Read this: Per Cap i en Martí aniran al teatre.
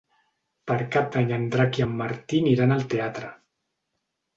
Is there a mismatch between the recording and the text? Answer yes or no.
yes